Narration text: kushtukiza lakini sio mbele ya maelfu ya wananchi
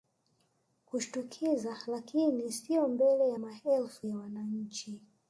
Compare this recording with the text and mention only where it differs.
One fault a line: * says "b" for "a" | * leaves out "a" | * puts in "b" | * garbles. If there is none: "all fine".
all fine